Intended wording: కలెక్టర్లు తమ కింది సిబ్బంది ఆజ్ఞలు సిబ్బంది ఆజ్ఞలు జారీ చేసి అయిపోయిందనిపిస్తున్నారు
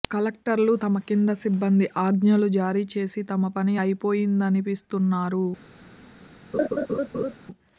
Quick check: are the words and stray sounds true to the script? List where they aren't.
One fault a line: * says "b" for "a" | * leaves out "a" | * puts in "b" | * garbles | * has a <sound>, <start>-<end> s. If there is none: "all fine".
* says "జారీ చేసి తమ పని" for "సిబ్బంది ఆజ్ఞలు జారీ చేసి"
* has a laugh, 6.5-7.3 s